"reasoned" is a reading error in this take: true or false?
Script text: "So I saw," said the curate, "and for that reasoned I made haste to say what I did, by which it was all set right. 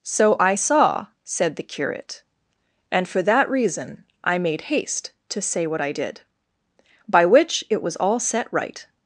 true